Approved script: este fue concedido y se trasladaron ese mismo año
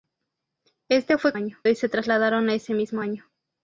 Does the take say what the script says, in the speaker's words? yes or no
no